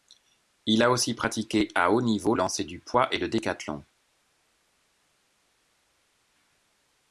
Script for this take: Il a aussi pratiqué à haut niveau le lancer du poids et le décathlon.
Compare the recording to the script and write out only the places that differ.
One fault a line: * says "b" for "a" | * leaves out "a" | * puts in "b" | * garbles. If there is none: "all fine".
* leaves out "le"